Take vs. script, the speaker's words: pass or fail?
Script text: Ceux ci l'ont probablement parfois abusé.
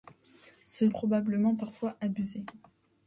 fail